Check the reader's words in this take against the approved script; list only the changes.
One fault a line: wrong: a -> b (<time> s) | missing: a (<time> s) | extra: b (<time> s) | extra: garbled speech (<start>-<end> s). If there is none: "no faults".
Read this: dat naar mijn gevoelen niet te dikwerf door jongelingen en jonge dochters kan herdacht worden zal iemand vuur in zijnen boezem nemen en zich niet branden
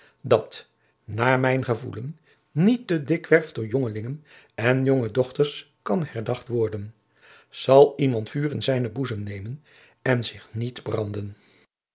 no faults